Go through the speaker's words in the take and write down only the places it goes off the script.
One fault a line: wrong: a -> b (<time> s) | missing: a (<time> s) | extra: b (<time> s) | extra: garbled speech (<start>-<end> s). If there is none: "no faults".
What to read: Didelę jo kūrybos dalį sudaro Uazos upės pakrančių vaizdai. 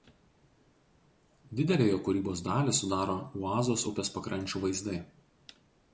no faults